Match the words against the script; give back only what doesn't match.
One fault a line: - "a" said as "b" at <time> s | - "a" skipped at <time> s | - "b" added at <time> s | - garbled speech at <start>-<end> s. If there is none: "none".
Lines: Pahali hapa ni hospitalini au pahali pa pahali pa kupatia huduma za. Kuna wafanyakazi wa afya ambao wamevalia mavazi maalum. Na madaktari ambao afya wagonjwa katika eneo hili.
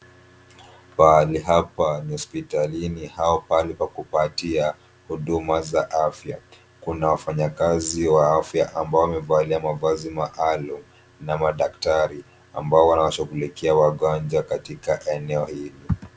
- "pahali pa" skipped at 3.9 s
- "afya" added at 5.9 s
- "afya" said as "wanawashughulikia" at 12.9 s